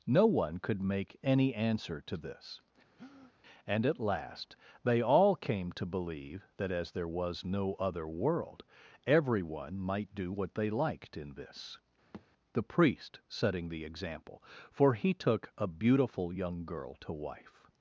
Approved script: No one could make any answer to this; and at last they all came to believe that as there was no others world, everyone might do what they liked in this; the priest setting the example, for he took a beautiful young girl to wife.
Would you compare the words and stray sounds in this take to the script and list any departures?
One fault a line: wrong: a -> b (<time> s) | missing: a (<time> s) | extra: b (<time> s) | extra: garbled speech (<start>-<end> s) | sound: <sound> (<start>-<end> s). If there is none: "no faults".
sound: breath (3.0-3.3 s)
wrong: others -> other (7.7 s)
sound: thud (12.1-12.3 s)